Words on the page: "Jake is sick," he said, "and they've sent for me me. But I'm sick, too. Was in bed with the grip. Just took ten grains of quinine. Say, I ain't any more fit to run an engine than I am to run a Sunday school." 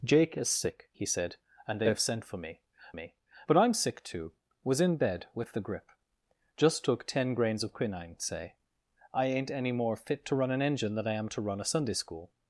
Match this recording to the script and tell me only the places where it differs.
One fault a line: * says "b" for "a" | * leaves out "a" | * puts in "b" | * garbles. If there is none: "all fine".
all fine